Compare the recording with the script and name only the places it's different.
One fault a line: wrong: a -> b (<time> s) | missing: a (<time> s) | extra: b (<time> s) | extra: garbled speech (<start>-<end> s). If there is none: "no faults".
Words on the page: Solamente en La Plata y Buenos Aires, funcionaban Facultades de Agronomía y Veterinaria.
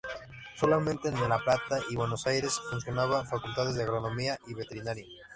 no faults